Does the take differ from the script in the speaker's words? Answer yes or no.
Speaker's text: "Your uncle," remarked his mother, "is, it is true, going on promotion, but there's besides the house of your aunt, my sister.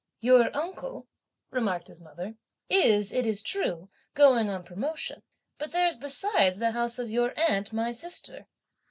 no